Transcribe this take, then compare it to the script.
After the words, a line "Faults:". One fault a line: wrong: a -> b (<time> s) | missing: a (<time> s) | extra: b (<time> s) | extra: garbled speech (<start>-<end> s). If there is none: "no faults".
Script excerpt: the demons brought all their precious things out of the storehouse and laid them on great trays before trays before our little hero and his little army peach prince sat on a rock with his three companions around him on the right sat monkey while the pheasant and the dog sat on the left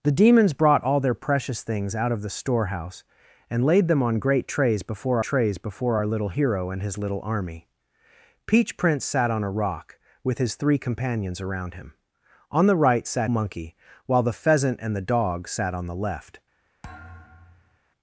the demons brought all their precious things out of the storehouse and laid them on great trays before trays before our little hero and his little army peach prince sat on a rock with his three companions around him on the right sat monkey while the pheasant and the dog sat on the left
Faults:
no faults